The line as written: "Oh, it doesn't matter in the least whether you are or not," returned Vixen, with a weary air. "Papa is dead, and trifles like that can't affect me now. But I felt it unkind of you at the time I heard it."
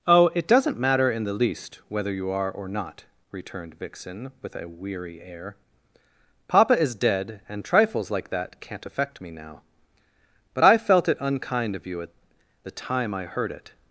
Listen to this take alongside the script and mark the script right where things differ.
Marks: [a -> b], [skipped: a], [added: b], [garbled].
"Oh, it doesn't matter in the least whether you are or not," returned Vixen, with a weary air. "Papa is dead, and trifles like that can't affect me now. But I felt it unkind of you at the time I heard it."